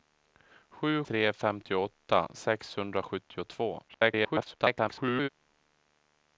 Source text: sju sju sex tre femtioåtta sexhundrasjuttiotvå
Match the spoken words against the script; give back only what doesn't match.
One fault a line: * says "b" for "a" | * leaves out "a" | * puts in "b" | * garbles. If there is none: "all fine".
* leaves out "sju sex"
* garbles